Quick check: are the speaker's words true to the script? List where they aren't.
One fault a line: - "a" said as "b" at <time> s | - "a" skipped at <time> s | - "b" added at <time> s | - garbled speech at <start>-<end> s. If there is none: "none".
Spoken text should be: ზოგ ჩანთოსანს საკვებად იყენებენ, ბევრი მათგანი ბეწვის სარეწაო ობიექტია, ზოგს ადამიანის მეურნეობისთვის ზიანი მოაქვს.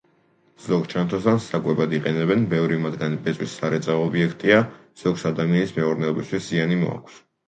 none